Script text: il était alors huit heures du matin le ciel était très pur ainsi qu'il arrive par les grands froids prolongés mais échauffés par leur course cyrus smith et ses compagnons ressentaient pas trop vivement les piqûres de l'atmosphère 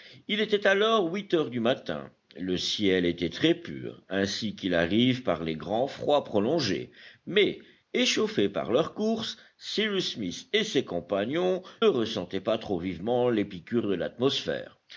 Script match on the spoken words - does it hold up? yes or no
yes